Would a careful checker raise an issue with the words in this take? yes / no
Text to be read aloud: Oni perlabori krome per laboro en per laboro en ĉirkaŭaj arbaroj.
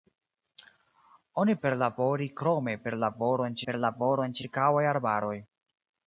no